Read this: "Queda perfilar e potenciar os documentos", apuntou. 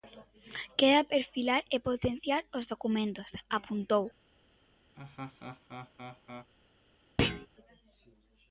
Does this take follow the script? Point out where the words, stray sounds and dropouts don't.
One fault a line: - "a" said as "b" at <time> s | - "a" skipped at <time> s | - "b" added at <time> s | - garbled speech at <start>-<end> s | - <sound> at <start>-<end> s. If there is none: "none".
- laugh at 5.0-6.5 s
- thud at 7.2-7.5 s